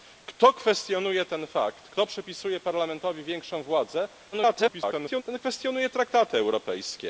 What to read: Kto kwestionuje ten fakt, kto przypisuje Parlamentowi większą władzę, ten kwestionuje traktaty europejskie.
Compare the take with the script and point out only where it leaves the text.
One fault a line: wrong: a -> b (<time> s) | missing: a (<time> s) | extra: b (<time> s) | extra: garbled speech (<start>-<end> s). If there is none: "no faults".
extra: garbled speech (4.3-5.2 s)